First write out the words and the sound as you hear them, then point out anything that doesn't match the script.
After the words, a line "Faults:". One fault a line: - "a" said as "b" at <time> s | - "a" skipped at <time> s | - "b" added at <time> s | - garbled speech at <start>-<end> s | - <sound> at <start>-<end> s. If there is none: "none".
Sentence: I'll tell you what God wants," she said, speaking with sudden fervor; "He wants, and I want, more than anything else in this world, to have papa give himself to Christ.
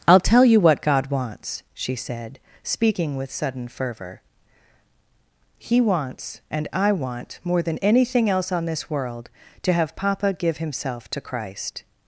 I'll tell you what God wants," she said, speaking with sudden fervor; "He wants, and I want, more than anything else on this world, to have papa give himself to Christ.
Faults:
- "in" said as "on" at 8.5 s